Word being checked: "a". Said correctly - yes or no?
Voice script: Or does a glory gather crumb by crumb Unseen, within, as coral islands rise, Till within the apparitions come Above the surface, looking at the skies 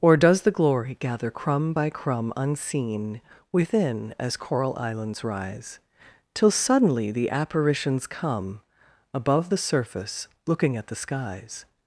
no